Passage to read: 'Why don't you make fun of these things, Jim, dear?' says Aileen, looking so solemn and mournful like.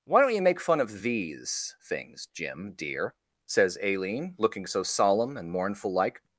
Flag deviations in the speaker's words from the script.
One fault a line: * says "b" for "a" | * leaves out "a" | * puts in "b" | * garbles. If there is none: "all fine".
all fine